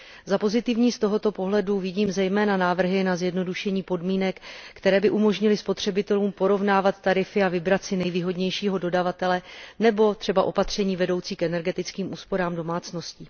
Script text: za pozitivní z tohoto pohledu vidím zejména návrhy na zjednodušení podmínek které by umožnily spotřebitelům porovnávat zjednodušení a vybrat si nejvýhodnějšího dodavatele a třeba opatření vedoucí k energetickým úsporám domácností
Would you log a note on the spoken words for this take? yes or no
yes